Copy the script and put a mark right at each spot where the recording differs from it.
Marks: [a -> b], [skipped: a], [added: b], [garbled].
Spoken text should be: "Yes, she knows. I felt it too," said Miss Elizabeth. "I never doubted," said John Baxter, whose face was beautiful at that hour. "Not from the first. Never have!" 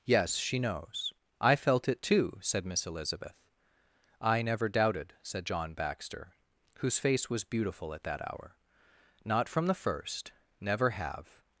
"Yes, she knows. I felt it too," said Miss Elizabeth. "I never doubted," said John Baxter, whose face was beautiful at that hour. "Not from the first. Never have!"